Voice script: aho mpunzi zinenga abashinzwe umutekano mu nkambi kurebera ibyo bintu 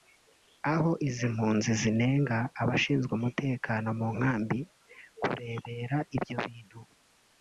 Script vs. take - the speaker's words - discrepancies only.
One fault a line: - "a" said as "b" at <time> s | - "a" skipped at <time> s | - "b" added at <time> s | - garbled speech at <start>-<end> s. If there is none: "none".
- "izi" added at 1.1 s